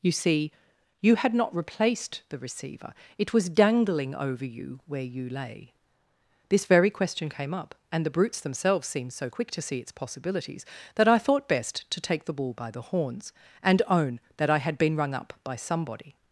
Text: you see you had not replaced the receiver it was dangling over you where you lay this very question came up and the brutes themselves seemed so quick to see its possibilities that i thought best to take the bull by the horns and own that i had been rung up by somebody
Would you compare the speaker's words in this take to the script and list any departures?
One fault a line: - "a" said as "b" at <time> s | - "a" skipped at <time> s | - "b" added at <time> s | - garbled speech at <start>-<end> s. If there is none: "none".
none